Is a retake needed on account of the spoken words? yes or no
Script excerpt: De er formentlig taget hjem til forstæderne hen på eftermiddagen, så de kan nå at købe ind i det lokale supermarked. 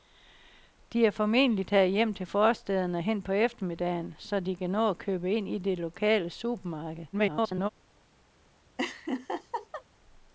yes